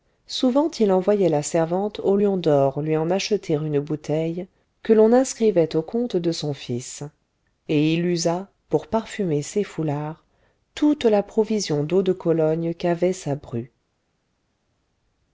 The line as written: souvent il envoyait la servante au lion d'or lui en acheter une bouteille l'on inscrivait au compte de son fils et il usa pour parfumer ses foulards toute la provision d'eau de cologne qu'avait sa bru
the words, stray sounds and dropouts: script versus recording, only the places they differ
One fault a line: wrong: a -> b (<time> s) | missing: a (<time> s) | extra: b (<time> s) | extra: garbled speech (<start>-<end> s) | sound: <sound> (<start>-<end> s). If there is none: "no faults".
extra: que (4.8 s)